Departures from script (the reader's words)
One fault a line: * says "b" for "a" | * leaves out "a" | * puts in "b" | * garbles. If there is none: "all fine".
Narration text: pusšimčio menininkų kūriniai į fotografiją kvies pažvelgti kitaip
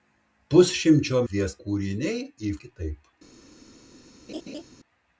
* says "kvies" for "menininkų"
* leaves out "fotografiją kvies pažvelgti"